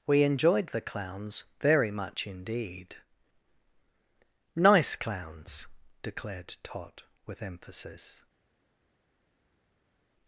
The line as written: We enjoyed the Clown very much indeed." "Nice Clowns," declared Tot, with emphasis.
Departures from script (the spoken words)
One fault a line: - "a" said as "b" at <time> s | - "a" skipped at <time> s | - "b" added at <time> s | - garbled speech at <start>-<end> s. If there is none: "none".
- "Clown" said as "Clowns" at 0.8 s